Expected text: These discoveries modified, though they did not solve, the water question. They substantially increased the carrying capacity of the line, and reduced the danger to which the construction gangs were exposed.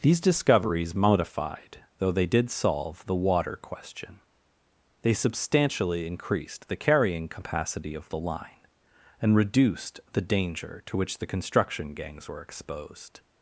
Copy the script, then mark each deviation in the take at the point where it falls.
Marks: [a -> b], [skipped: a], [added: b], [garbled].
These discoveries modified, though they did [skipped: not] solve, the water question. They substantially increased the carrying capacity of the line, and reduced the danger to which the construction gangs were exposed.